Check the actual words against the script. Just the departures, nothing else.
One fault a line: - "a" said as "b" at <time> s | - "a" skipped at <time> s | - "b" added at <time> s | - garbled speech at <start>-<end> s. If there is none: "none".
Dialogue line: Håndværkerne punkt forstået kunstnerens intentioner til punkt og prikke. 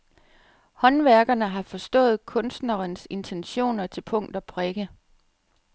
- "punkt" said as "har" at 1.5 s